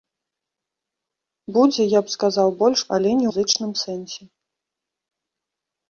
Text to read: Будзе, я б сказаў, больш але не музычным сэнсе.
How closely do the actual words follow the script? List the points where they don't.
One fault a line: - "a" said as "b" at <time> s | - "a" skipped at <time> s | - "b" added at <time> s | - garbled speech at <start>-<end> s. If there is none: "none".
none